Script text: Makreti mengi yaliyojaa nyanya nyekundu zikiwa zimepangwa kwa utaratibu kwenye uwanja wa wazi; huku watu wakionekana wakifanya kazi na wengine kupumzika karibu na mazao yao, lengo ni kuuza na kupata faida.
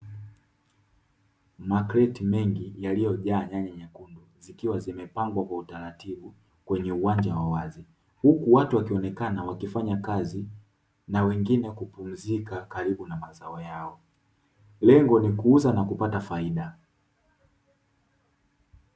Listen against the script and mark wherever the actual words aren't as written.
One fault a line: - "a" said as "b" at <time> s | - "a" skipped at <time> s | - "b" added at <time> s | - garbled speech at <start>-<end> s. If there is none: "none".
none